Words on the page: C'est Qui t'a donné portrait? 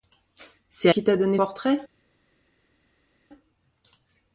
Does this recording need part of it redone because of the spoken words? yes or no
no